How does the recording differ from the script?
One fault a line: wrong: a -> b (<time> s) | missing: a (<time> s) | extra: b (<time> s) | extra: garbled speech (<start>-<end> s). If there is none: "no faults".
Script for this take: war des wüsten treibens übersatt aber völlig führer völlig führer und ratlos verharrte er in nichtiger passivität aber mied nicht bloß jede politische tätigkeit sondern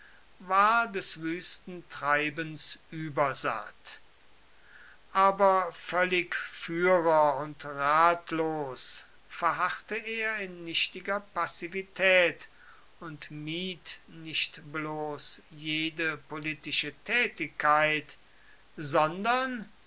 missing: völlig führer (7.4 s)
wrong: aber -> und (13.0 s)